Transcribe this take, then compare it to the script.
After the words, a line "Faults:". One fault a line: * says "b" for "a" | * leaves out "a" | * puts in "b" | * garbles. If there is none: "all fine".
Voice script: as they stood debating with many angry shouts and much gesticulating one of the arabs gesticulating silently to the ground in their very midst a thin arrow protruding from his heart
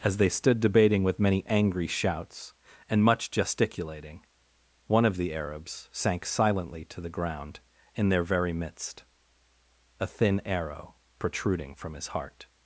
as they stood debating with many angry shouts and much gesticulating one of the arabs sank silently to the ground in their very midst a thin arrow protruding from his heart
Faults:
* says "sank" for "gesticulating"